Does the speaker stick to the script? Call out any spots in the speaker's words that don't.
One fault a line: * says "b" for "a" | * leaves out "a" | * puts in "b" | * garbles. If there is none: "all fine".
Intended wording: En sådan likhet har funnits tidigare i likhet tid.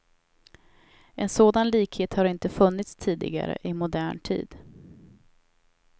* puts in "inte"
* says "modern" for "likhet"